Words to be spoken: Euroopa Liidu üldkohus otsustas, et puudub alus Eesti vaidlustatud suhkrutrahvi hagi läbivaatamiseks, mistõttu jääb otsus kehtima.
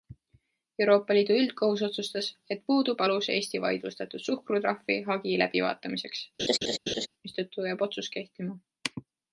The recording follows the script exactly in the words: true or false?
true